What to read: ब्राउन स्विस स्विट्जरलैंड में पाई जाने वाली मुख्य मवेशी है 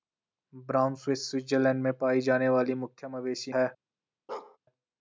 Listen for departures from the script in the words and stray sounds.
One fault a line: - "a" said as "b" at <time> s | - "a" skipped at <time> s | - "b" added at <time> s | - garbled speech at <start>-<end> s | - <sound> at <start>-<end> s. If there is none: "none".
- bark at 4.3-4.6 s